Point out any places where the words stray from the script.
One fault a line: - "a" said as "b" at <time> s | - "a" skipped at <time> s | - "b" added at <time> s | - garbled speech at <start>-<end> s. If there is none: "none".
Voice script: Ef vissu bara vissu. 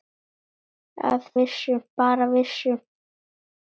none